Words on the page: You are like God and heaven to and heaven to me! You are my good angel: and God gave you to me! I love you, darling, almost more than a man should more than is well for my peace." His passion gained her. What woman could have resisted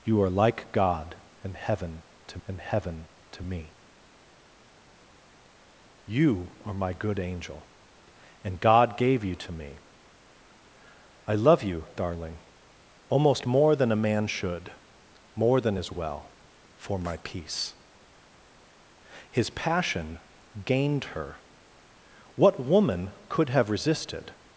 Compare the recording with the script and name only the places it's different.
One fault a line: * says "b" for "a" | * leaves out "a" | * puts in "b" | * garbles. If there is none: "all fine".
all fine